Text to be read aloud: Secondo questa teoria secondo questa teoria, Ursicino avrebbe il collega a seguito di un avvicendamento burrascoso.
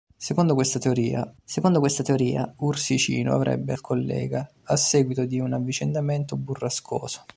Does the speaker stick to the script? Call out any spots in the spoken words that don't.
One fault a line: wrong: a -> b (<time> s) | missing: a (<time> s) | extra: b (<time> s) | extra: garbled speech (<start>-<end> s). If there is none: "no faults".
no faults